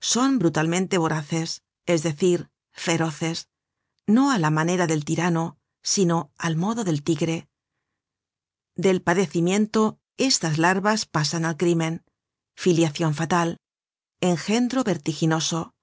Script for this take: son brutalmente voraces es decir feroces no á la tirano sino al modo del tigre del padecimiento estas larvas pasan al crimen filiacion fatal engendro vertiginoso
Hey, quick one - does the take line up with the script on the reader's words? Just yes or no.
no